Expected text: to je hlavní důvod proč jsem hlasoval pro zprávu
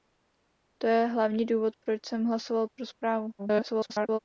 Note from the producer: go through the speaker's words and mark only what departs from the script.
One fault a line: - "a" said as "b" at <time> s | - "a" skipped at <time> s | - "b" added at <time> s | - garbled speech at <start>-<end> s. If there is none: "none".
- garbled speech at 3.4-4.2 s